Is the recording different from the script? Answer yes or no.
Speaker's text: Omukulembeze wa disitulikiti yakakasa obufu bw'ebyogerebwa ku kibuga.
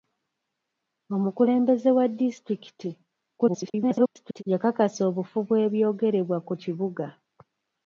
yes